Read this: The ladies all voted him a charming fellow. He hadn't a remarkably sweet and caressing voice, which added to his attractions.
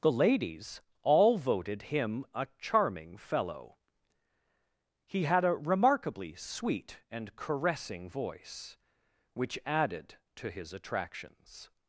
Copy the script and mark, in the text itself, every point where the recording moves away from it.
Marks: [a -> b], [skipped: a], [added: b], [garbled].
The ladies all voted him a charming fellow. He [hadn't -> had] a remarkably sweet and caressing voice, which added to his attractions.